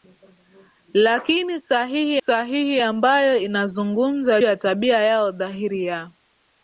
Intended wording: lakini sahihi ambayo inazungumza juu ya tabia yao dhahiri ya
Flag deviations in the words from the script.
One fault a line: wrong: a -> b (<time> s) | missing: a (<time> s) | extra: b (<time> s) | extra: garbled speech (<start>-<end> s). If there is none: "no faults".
extra: sahihi (2.2 s)
missing: juu (4.4 s)